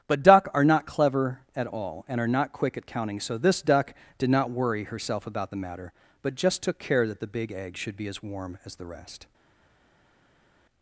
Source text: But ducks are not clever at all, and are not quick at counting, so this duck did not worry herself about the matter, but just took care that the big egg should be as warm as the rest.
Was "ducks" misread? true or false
true